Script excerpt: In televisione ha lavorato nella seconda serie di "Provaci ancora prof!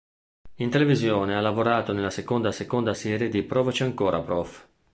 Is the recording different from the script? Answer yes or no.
yes